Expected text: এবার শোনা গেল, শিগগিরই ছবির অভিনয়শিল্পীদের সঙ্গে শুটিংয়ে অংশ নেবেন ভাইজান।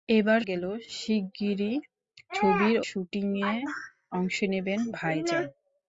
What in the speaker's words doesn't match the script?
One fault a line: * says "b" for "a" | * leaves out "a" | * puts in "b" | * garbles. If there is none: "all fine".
* leaves out "শোনা"
* leaves out "অভিনয়শিল্পীদের সঙ্গে"